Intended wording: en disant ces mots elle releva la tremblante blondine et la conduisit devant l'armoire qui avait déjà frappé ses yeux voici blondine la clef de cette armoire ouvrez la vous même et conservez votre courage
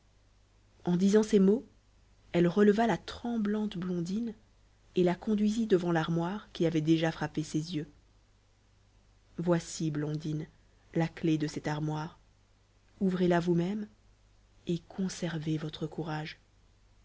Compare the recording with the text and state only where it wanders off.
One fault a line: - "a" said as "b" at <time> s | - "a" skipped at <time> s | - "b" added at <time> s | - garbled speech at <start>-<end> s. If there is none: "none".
none